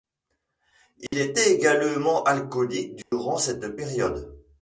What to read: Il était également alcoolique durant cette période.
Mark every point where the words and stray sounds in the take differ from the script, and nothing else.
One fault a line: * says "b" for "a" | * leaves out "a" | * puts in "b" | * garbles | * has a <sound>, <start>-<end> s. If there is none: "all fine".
* has a dropout, 1.1-1.1 s
* has a dropout, 3.0-3.1 s